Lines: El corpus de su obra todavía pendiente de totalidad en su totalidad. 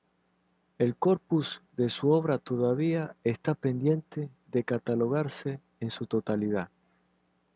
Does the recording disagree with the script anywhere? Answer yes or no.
yes